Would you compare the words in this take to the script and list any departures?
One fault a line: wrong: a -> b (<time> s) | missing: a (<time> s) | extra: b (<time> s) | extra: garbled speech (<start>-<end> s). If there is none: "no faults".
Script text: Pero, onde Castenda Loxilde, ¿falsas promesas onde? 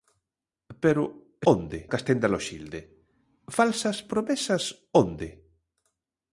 no faults